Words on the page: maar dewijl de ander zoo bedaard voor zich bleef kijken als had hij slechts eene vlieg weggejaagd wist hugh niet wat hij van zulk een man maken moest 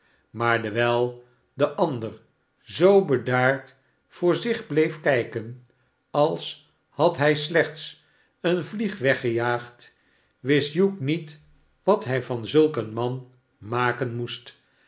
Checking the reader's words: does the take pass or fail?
pass